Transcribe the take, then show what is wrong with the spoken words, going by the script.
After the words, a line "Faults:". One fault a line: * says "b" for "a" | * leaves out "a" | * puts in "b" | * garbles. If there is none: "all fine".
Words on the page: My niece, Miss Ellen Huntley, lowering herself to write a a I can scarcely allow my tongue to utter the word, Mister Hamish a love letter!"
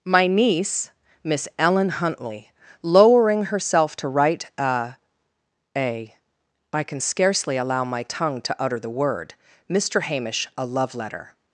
My niece, Miss Ellen Huntley, lowering herself to write a a I can scarcely allow my tongue to utter the word, Mister Hamish a love letter!"
Faults:
all fine